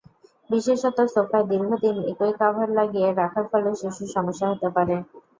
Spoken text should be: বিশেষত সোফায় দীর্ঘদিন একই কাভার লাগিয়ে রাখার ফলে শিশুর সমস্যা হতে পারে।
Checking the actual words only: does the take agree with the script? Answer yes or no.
yes